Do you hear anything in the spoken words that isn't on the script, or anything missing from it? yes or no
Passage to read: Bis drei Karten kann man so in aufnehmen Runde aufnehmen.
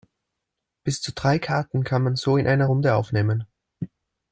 yes